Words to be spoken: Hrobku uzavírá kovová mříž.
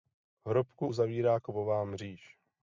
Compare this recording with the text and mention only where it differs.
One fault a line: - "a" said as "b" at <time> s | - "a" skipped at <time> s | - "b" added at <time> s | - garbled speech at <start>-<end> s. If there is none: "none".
none